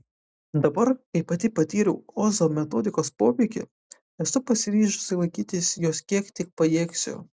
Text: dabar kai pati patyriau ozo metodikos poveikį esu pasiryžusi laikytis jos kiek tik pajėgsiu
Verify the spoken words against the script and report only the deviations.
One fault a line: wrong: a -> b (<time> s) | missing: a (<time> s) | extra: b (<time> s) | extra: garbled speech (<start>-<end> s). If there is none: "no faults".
no faults